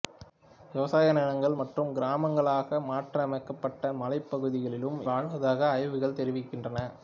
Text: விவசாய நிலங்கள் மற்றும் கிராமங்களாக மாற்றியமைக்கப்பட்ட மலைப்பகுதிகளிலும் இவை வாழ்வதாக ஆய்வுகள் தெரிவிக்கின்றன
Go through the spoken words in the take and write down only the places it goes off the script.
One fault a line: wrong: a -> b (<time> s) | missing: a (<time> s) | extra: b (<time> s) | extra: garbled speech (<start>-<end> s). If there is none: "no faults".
missing: இவை (5.0 s)